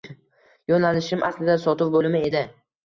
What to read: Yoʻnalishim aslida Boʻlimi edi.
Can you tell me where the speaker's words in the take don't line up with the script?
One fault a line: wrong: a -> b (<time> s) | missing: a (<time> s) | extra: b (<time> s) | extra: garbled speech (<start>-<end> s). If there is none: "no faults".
extra: Sotuv (1.7 s)